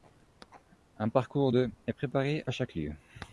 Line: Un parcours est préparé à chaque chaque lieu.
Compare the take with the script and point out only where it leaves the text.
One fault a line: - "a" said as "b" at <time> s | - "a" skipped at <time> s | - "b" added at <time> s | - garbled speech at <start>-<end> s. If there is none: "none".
- "de" added at 1.5 s
- "chaque" skipped at 2.7 s